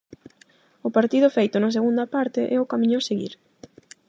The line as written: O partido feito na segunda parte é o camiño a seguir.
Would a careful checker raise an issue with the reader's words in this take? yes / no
no